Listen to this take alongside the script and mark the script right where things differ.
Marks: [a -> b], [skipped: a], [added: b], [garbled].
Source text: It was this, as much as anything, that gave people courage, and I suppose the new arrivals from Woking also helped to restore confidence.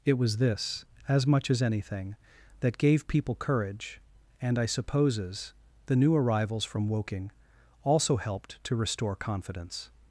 It was this, as much as anything, that gave people courage, and I [suppose -> supposes] the new arrivals from Woking also helped to restore confidence.